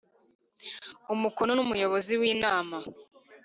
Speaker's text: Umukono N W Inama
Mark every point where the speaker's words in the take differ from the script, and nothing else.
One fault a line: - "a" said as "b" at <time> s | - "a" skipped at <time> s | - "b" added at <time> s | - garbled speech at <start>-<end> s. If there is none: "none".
- "Umuyobozi" added at 1.6 s